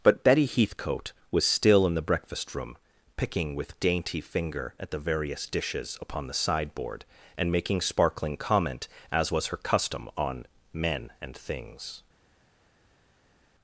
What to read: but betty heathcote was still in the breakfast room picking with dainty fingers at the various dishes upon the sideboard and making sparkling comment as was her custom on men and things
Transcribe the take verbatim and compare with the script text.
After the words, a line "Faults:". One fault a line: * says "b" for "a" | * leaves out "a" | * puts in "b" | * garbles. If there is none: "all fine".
but betty heathcote was still in the breakfast room picking with dainty finger at the various dishes upon the sideboard and making sparkling comment as was her custom on men and things
Faults:
* says "finger" for "fingers"